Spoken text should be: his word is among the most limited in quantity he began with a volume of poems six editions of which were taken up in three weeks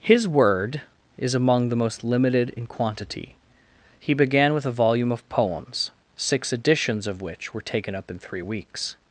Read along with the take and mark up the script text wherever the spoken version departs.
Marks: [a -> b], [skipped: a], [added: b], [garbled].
his word is among the most limited in quantity he began with a volume of poems six editions of which were taken up in three weeks